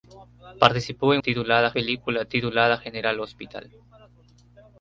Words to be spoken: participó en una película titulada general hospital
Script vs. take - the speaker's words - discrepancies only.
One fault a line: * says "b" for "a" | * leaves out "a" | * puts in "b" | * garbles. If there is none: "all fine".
* says "titulada" for "una"